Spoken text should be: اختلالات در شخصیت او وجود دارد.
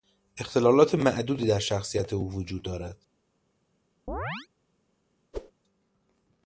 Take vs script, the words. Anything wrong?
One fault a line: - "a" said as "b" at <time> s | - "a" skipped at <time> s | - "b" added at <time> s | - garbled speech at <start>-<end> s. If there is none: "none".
- "معدودی" added at 0.9 s